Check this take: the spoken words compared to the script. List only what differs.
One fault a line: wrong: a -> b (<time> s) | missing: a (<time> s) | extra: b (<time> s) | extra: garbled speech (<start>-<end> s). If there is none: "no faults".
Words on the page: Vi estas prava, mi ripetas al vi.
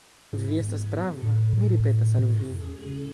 no faults